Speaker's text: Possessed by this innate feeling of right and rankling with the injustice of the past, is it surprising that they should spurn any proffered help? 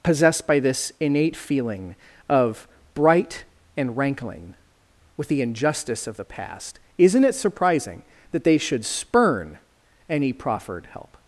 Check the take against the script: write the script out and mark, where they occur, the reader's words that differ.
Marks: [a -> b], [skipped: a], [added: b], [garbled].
Possessed by this innate feeling of [right -> bright] and rankling with the injustice of the past, [is -> isn't] it surprising that they should spurn any proffered help?